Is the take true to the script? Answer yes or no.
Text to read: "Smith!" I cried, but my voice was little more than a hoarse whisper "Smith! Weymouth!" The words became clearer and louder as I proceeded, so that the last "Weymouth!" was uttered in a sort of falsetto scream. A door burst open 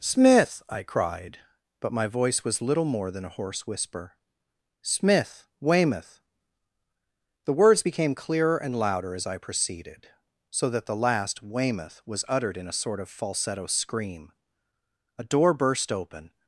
yes